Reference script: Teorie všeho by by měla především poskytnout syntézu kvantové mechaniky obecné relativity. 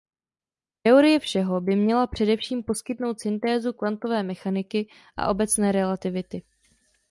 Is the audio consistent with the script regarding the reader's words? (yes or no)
no